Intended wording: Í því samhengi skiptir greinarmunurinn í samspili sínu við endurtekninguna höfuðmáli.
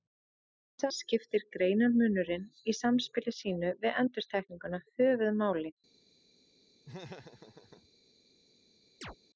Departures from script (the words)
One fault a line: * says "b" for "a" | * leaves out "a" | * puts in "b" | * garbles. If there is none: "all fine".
* leaves out "samhengi"